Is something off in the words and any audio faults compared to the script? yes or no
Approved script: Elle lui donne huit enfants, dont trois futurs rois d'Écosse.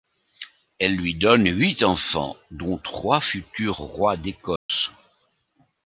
yes